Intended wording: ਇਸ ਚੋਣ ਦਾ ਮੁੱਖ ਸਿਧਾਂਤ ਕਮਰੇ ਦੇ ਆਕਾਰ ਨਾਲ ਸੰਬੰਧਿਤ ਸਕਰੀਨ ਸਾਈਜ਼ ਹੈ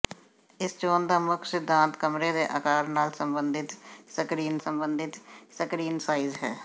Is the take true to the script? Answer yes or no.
no